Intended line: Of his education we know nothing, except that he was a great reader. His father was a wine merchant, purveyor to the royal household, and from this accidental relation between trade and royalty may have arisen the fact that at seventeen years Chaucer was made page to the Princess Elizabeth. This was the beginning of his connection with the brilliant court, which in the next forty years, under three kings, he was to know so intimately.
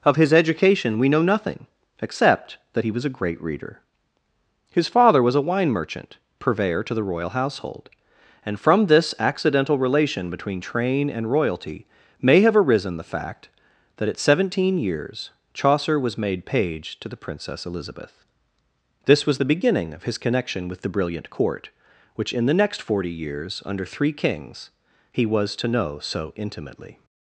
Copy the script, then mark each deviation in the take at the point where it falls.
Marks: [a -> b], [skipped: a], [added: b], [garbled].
Of his education we know nothing, except that he was a great reader. His father was a wine merchant, purveyor to the royal household, and from this accidental relation between [trade -> train] and royalty may have arisen the fact that at seventeen years Chaucer was made page to the Princess Elizabeth. This was the beginning of his connection with the brilliant court, which in the next forty years, under three kings, he was to know so intimately.